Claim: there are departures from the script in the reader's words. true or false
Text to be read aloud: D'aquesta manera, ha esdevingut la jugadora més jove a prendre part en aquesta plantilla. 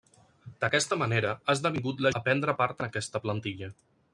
true